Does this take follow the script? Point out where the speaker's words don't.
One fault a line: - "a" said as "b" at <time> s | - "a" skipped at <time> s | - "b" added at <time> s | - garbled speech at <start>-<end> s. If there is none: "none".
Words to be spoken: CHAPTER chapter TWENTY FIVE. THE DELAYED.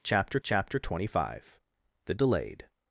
none